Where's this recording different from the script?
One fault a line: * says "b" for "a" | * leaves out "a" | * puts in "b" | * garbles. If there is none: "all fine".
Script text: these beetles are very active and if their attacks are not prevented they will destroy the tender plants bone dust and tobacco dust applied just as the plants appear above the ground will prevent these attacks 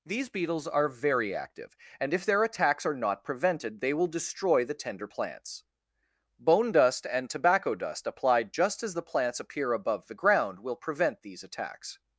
all fine